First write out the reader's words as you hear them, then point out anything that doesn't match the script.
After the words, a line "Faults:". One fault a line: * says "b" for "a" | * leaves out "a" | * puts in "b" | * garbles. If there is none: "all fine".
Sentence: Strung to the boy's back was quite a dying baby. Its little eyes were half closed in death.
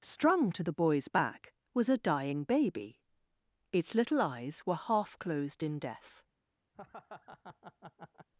Strung to the boy's back was a dying baby. Its little eyes were half closed in death.
Faults:
* leaves out "quite"